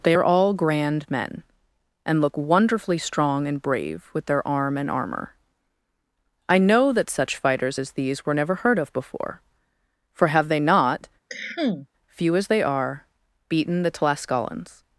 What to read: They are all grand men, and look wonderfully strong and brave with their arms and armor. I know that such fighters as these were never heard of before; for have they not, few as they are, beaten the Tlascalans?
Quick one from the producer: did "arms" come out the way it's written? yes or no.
no